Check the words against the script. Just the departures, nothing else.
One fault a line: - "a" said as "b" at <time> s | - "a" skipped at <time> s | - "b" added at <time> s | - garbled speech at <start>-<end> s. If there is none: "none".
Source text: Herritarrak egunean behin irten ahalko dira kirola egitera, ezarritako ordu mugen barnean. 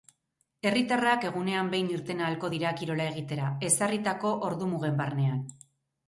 none